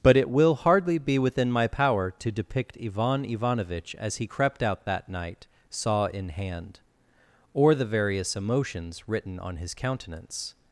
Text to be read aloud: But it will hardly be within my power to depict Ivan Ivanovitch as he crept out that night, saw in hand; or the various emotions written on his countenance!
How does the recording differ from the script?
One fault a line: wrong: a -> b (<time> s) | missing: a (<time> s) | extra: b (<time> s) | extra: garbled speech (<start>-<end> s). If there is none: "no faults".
no faults